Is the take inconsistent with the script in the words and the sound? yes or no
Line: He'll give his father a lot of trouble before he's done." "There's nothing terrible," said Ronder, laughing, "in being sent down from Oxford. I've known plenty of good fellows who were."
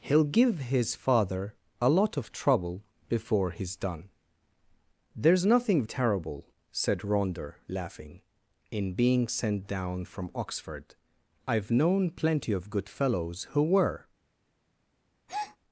yes